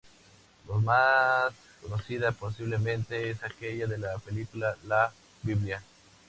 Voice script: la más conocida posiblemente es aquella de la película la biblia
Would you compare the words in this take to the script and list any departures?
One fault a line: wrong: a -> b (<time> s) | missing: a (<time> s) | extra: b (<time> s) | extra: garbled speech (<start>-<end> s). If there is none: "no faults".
no faults